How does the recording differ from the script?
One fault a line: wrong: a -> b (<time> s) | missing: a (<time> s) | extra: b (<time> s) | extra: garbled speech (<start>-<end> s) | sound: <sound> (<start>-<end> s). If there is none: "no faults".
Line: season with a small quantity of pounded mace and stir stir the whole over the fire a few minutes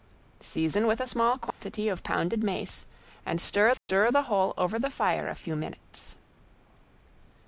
sound: dropout (1.5-1.6 s)
sound: dropout (3.8-3.9 s)